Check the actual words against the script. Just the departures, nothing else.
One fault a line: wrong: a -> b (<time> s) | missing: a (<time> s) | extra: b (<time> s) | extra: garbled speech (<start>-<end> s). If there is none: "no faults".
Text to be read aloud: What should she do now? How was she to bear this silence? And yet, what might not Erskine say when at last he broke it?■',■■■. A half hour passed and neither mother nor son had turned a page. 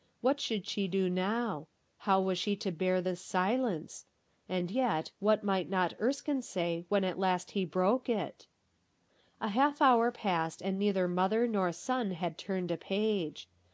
no faults